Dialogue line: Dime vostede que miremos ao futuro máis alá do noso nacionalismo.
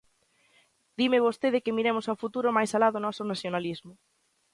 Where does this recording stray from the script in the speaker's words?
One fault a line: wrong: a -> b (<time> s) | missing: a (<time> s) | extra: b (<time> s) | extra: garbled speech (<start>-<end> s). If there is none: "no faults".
no faults